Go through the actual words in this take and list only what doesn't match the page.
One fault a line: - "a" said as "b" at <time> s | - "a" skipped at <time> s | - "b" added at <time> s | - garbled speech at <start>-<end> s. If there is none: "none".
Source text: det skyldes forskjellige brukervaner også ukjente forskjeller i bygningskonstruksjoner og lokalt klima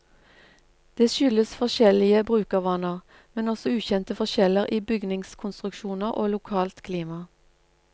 - "men" added at 3.3 s